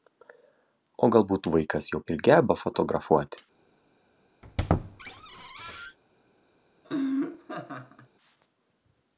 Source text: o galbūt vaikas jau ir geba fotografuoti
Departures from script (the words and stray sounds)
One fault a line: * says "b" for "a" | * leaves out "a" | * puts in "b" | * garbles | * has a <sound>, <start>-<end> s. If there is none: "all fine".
* has a squeak, 4.4-6.0 s
* has a laugh, 6.8-8.1 s